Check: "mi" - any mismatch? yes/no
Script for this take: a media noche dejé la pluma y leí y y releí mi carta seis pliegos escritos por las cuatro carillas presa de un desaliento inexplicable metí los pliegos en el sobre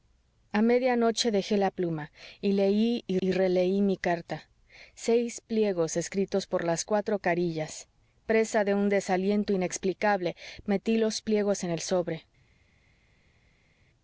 no